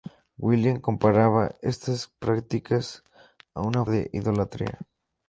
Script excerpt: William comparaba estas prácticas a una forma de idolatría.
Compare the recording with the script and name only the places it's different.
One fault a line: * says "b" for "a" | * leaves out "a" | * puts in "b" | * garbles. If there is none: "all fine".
* leaves out "forma"